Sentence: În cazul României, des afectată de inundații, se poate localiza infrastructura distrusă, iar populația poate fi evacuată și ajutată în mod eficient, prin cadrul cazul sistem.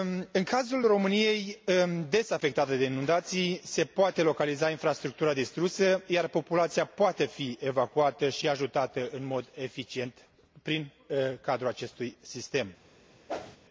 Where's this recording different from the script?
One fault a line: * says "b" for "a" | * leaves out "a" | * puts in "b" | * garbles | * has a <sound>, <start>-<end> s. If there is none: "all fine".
* says "acestui" for "cazul"
* has a whoosh, 13.3-13.6 s